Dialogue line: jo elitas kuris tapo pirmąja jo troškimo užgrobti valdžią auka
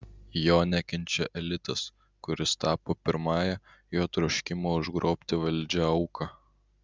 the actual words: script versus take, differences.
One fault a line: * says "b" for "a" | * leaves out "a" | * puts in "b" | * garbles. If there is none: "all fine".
* puts in "nekenčia"